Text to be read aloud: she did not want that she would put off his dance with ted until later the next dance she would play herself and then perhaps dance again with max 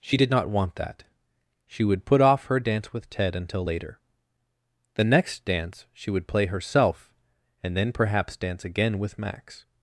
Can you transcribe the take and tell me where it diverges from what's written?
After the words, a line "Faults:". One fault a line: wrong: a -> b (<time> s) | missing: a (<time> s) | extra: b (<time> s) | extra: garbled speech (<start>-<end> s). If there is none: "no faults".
she did not want that she would put off her dance with ted until later the next dance she would play herself and then perhaps dance again with max
Faults:
wrong: his -> her (2.4 s)